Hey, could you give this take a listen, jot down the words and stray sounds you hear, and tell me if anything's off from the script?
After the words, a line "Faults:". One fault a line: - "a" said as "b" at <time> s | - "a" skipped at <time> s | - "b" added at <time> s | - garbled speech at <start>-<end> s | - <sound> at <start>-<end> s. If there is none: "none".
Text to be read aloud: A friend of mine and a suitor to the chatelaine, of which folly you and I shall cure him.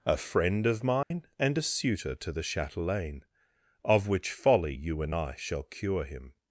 A friend of mine and a suitor to the chatelaine, of which folly you and I shall cure him.
Faults:
- dropout at 1.0-1.1 s